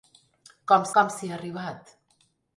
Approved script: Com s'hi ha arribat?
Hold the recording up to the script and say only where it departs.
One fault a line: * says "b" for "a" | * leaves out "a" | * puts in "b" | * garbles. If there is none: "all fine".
* puts in "com"